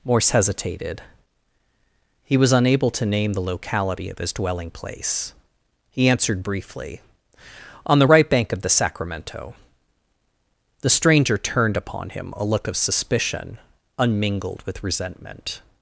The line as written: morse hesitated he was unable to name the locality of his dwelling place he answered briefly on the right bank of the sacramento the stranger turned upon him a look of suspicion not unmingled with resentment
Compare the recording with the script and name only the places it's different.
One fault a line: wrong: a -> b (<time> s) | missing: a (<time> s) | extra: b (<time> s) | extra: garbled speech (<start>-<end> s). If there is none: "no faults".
missing: not (13.6 s)